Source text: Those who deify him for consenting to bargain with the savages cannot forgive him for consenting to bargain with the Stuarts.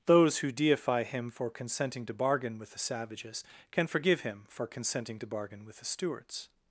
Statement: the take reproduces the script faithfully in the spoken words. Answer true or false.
false